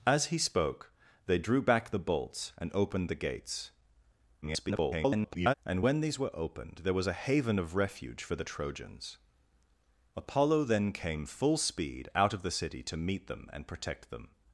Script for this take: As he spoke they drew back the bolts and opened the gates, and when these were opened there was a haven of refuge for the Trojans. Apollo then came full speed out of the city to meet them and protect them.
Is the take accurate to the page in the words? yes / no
no